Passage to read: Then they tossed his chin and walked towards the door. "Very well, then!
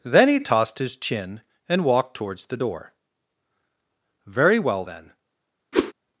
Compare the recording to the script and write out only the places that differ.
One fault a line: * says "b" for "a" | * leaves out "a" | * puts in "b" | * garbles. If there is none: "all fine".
* says "he" for "they"